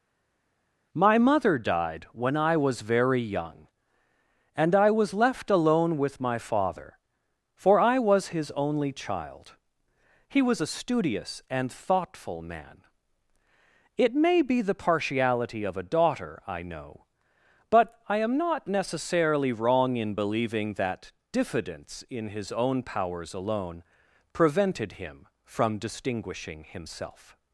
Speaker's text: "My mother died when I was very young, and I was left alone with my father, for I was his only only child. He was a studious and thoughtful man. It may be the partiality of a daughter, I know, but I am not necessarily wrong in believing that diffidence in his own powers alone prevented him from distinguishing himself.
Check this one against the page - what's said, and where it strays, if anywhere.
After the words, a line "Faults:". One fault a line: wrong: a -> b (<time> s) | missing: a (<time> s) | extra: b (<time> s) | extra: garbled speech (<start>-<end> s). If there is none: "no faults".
"My mother died when I was very young, and I was left alone with my father, for I was his only child. He was a studious and thoughtful man. It may be the partiality of a daughter, I know, but I am not necessarily wrong in believing that diffidence in his own powers alone prevented him from distinguishing himself.
Faults:
missing: only (8.9 s)